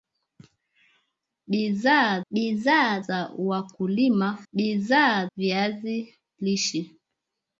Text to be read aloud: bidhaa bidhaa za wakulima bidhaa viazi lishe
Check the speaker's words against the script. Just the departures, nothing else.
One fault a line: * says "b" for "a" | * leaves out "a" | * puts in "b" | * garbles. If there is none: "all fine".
all fine